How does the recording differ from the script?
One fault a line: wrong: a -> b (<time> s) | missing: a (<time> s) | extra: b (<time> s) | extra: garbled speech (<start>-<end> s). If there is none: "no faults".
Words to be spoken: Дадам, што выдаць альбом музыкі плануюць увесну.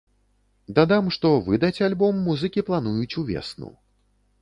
no faults